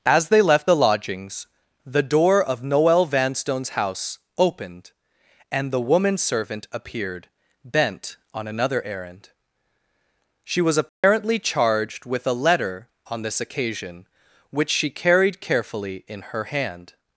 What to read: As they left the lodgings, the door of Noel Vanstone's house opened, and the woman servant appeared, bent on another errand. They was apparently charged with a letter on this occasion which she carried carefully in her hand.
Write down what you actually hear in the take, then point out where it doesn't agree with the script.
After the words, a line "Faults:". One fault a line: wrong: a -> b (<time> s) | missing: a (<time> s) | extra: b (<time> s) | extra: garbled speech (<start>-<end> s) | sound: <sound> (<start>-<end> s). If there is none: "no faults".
As they left the lodgings, the door of Noel Vanstone's house opened, and the woman servant appeared, bent on another errand. She was apparently charged with a letter on this occasion which she carried carefully in her hand.
Faults:
wrong: They -> She (10.4 s)
sound: dropout (10.9-11.0 s)